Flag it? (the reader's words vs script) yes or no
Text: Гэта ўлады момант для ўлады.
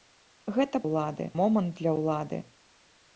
no